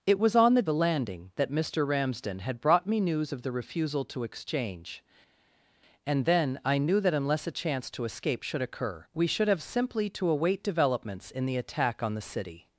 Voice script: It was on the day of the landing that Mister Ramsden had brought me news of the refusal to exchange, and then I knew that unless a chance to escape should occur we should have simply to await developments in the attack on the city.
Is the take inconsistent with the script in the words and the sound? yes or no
yes